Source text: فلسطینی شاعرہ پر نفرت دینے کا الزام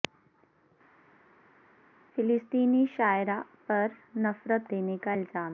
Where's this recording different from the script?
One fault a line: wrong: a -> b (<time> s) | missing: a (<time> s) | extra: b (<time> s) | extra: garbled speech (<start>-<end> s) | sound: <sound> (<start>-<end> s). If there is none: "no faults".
no faults